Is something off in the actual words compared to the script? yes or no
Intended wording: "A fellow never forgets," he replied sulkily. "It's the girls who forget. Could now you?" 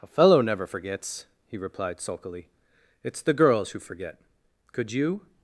yes